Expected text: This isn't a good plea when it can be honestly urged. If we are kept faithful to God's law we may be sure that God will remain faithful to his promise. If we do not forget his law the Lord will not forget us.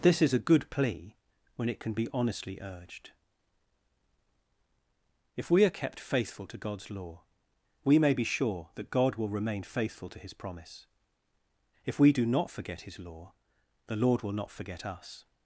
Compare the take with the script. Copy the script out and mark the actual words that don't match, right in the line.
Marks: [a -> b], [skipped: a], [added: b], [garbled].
This [isn't -> is] a good plea when it can be honestly urged. If we are kept faithful to God's law we may be sure that God will remain faithful to his promise. If we do not forget his law the Lord will not forget us.